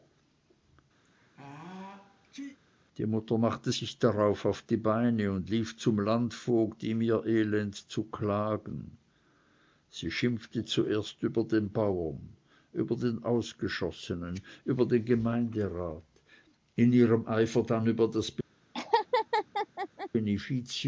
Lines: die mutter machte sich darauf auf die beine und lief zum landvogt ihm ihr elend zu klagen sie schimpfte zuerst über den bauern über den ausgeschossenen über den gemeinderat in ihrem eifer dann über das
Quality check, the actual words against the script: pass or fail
pass